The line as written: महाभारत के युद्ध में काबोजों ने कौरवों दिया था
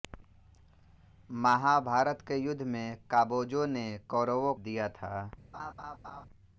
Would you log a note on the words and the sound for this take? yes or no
yes